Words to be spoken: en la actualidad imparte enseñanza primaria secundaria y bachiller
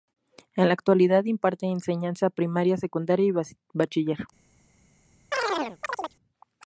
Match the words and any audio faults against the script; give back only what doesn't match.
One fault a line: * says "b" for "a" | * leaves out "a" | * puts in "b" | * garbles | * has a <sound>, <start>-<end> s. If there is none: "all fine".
* has a chirp, 5.3-6.2 s